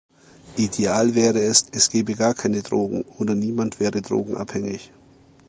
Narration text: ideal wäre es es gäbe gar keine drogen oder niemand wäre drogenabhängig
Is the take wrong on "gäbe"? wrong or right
right